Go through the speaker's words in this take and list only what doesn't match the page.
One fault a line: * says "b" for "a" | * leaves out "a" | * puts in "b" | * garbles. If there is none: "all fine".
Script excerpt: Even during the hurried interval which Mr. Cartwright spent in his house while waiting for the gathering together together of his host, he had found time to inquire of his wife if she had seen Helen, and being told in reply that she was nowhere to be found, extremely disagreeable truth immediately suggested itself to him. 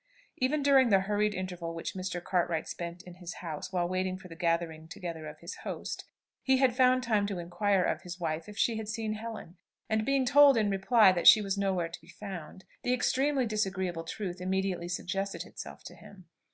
* leaves out "together"
* puts in "the"